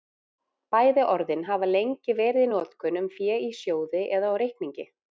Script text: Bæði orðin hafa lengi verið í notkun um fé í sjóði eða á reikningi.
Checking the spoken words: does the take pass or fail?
pass